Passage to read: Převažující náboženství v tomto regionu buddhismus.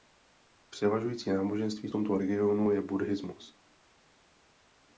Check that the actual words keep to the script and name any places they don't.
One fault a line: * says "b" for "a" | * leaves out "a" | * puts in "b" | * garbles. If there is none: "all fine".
* puts in "je"